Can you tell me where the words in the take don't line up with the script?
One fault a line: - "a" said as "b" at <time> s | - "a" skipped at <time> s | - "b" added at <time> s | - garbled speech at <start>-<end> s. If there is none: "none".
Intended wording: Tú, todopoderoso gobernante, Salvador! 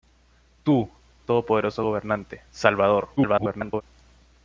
- garbled speech at 3.2-3.8 s